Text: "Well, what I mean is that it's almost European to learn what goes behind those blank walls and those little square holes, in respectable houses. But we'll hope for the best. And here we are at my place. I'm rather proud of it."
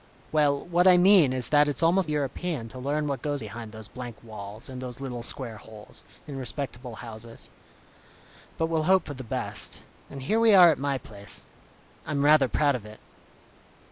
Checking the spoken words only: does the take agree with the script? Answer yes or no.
yes